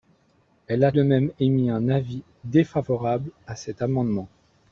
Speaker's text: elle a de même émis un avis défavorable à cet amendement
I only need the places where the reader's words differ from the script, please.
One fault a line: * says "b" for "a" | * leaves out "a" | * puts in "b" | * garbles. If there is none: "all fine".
all fine